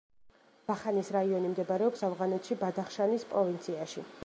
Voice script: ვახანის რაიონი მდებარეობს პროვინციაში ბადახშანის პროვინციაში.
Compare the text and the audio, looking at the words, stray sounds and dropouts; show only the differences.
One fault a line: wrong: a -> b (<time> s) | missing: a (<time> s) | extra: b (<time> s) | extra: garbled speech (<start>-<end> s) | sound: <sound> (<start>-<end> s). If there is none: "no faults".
wrong: პროვინციაში -> ავღანეთში (2.1 s)